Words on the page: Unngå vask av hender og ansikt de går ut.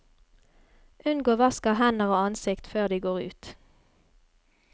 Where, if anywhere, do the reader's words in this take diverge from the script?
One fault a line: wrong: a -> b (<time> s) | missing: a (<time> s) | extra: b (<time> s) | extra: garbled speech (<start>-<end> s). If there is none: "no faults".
extra: før (2.7 s)